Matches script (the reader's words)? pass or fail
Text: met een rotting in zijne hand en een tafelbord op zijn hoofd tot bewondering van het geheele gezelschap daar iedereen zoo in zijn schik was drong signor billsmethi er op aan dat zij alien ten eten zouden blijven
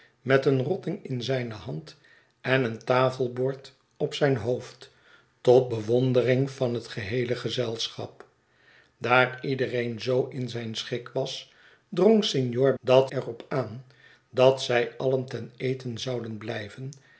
fail